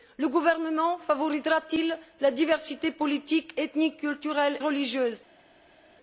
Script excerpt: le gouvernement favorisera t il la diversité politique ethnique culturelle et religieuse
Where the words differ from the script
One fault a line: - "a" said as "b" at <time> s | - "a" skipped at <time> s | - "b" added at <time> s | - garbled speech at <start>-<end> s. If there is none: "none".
- "et" skipped at 4.6 s